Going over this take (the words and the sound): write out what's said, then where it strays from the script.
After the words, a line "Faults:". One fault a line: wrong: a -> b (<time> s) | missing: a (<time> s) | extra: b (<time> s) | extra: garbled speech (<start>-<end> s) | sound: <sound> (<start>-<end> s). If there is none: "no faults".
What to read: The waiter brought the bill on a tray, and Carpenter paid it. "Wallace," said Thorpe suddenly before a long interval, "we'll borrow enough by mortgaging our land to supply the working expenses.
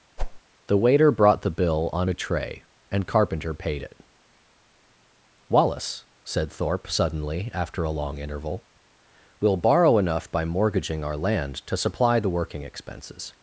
The waiter brought the bill on a tray, and Carpenter paid it. "Wallace," said Thorpe suddenly after a long interval, "we'll borrow enough by mortgaging our land to supply the working expenses.
Faults:
sound: whoosh (0.2-0.4 s)
wrong: before -> after (7.5 s)